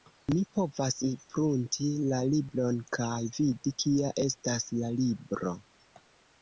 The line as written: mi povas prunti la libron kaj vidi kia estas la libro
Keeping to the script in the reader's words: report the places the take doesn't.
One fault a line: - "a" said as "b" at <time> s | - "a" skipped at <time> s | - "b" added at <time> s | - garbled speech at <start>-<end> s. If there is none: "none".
none